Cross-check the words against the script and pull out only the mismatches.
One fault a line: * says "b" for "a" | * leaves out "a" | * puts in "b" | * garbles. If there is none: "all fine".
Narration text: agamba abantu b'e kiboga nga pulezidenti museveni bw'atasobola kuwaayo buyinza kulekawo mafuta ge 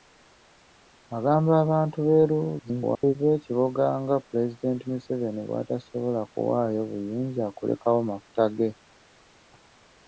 * garbles